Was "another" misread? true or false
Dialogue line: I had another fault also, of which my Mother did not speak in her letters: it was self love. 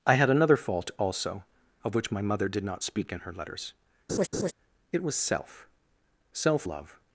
false